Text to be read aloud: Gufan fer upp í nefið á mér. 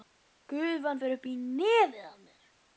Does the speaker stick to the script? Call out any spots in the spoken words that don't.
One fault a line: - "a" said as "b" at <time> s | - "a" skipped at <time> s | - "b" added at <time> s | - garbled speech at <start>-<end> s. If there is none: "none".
none